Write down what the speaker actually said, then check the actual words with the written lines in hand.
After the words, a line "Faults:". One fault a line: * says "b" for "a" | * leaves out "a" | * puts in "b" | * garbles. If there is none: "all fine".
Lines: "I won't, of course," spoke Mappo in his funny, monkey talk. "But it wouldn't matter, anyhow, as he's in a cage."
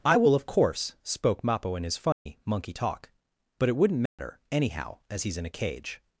"I will, of course," spoke Mappo in his funny, monkey talk. "But it wouldn't matter, anyhow, as he's in a cage."
Faults:
* says "will" for "won't"